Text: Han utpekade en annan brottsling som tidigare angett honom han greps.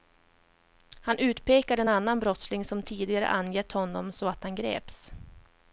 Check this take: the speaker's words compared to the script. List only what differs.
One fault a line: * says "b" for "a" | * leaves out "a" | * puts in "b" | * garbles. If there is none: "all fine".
* puts in "så att"